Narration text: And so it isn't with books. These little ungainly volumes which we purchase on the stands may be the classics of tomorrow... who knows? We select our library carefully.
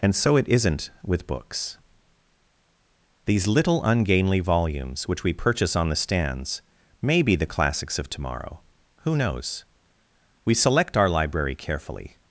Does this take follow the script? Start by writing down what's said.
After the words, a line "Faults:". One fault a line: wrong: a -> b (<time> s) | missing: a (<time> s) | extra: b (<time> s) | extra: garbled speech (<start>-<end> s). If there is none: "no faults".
And so it isn't with books. These little ungainly volumes which we purchase on the stands may be the classics of tomorrow... who knows? We select our library carefully.
Faults:
no faults